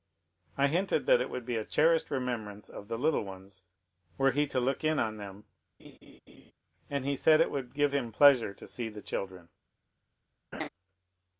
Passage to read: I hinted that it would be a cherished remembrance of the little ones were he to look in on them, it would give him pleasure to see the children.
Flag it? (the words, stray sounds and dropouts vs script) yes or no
yes